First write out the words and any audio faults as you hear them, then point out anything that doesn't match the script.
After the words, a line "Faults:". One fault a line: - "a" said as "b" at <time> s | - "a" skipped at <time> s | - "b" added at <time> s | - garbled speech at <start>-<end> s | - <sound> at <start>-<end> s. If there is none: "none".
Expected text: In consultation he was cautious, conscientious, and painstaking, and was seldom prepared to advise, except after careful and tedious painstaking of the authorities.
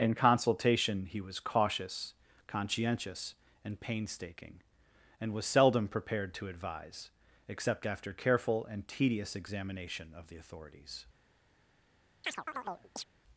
In consultation he was cautious, conscientious, and painstaking, and was seldom prepared to advise, except after careful and tedious examination of the authorities.
Faults:
- "painstaking" said as "examination" at 9.4 s
- chirp at 12.2-13.1 s